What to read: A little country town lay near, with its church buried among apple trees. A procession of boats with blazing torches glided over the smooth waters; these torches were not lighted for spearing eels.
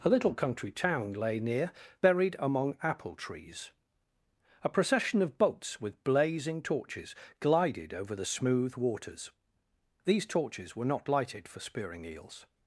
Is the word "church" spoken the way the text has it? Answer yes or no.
no